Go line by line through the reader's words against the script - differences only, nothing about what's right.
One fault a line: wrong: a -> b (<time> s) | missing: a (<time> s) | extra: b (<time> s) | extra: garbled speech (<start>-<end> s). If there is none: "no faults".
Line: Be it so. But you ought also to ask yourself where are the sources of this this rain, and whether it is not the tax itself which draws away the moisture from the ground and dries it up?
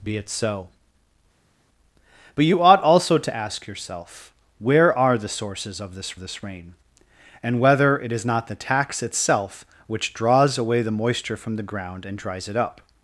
no faults